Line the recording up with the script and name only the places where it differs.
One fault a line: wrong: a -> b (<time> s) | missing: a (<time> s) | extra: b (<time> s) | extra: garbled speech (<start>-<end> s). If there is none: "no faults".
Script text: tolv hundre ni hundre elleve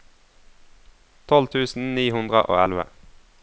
wrong: hundre -> tusen (1.6 s)
extra: og (2.5 s)